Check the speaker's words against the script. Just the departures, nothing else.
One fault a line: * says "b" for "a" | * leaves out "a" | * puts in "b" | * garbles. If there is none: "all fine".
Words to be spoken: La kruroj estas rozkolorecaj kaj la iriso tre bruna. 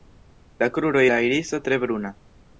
* leaves out "estas rozkolorecaj kaj"